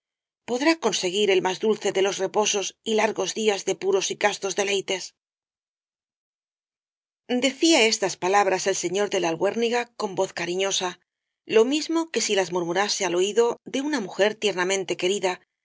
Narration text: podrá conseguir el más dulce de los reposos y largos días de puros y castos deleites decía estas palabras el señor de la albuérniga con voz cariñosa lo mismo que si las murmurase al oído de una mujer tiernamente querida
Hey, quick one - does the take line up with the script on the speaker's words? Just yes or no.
yes